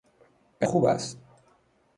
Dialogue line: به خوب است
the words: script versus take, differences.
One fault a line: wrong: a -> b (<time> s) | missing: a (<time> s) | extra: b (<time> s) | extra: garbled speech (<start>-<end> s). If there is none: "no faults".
no faults